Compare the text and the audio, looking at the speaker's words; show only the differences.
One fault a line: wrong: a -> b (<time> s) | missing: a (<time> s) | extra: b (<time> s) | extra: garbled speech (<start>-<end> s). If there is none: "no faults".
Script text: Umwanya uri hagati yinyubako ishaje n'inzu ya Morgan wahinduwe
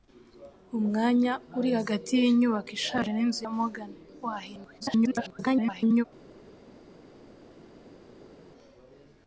extra: garbled speech (4.8-6.0 s)